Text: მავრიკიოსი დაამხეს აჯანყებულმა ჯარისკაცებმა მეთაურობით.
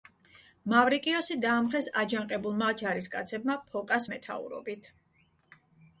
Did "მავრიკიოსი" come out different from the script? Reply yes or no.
no